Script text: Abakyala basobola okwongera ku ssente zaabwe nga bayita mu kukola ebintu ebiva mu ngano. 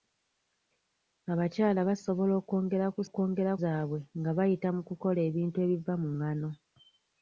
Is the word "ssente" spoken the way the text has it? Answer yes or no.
no